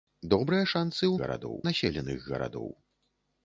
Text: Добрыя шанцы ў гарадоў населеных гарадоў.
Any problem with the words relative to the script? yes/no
no